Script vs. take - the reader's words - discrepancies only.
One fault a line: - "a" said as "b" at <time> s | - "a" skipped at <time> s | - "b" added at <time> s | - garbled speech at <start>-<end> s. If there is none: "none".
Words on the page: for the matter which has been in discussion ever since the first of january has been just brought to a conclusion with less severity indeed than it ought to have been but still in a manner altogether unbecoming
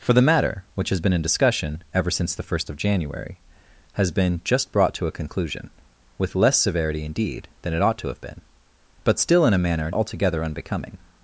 none